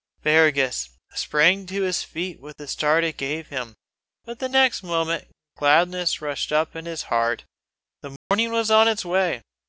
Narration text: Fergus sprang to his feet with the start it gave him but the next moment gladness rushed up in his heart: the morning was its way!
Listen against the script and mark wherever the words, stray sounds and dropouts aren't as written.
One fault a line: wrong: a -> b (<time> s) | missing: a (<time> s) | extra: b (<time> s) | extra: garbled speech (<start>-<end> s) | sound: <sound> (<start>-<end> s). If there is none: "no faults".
sound: dropout (8.2-8.3 s)
extra: on (8.7 s)